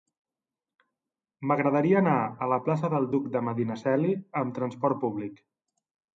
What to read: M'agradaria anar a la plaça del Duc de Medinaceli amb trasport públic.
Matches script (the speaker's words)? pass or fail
pass